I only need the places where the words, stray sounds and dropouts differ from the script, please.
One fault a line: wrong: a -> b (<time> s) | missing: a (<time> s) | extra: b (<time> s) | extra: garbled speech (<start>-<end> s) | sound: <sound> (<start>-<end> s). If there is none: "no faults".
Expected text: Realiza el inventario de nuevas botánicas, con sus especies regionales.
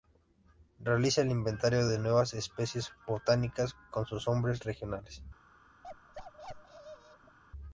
extra: especies (2.3 s)
wrong: especies -> nombres (4.3 s)
sound: bark (5.8-7.4 s)